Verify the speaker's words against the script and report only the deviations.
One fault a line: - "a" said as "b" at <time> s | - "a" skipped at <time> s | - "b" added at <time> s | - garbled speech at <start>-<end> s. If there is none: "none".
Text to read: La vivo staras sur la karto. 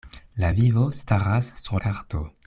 - "la" skipped at 1.8 s